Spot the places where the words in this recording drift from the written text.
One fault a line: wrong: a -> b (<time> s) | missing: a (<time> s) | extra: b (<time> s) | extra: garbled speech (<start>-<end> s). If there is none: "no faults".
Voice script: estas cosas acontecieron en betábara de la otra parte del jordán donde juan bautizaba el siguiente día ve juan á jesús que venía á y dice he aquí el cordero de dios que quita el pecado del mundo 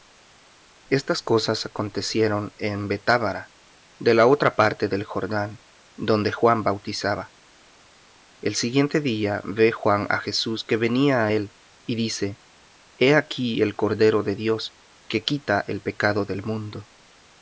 extra: él (11.3 s)